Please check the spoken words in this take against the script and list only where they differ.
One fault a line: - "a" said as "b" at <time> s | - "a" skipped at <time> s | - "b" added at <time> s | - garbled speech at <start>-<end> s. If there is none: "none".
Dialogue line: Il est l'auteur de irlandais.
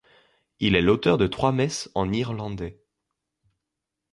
- "trois messes en" added at 1.3 s